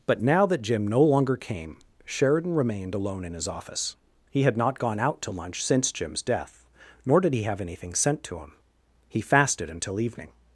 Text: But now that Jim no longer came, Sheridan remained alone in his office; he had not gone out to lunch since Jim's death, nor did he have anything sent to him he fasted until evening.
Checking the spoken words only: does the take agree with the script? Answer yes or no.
yes